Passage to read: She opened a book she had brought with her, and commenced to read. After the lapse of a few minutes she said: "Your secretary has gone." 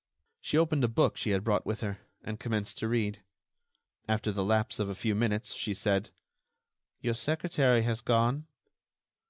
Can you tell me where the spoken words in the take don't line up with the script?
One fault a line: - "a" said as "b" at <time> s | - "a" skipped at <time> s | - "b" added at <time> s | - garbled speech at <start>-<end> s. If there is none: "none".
none